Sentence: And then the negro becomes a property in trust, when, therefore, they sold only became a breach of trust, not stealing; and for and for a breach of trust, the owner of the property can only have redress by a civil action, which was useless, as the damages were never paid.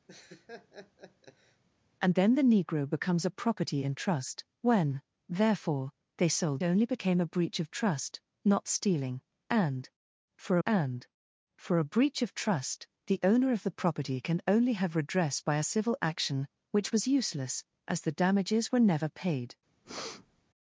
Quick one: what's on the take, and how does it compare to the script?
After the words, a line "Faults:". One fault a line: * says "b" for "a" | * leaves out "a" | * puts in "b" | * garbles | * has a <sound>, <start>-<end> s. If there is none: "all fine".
And then the negro becomes a property in trust, when, therefore, they sold only became a breach of trust, not stealing; and for and for a breach of trust, the owner of the property can only have redress by a civil action, which was useless, as the damages were never paid.
Faults:
* has a laugh, 0.1-1.6 s
* has a breath, 19.8-20.4 s